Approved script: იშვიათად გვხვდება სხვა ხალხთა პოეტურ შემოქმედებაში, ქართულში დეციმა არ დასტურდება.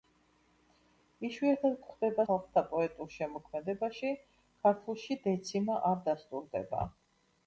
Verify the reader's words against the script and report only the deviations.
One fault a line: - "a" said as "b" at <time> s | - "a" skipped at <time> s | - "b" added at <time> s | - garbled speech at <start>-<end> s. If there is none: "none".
- "სხვა" skipped at 2.2 s